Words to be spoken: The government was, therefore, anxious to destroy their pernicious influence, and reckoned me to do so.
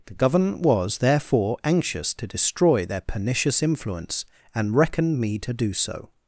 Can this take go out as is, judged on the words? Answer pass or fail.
pass